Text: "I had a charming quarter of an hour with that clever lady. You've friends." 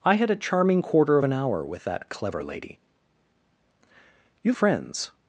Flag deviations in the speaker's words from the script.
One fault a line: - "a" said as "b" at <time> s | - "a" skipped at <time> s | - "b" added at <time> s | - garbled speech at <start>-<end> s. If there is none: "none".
none